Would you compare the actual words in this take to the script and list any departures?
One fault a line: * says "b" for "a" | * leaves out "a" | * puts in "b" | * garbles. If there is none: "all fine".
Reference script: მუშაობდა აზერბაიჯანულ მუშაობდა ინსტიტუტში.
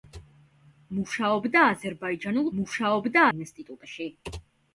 all fine